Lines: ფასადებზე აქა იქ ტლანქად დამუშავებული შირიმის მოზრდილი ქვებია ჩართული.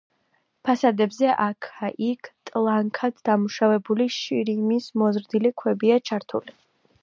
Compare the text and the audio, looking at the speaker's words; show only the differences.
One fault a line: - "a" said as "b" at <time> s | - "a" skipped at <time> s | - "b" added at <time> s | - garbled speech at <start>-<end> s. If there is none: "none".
none